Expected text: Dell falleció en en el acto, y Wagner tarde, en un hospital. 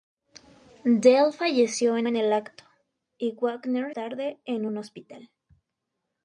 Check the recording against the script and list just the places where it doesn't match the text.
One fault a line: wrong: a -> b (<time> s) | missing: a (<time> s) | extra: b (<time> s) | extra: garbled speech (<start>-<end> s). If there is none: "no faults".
no faults